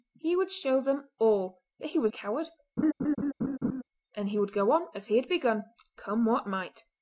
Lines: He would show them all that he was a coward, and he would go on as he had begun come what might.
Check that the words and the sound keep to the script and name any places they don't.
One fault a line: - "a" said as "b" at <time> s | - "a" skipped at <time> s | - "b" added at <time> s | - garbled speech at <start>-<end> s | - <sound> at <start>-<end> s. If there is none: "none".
- laugh at 2.8-3.8 s